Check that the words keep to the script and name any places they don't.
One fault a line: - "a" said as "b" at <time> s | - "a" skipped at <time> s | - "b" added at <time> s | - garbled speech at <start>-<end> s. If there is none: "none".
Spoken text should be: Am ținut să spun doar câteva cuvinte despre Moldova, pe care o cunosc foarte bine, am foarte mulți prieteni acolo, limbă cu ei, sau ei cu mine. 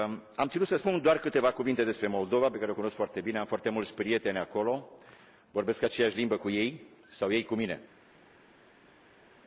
- "vorbesc aceeași" added at 5.5 s